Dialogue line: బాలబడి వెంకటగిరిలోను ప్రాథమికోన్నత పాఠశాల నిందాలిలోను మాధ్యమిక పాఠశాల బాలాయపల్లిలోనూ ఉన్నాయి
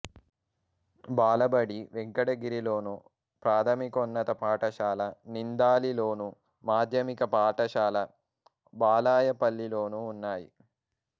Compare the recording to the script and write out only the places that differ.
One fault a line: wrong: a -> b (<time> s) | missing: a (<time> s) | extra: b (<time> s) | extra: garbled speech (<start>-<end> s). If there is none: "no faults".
no faults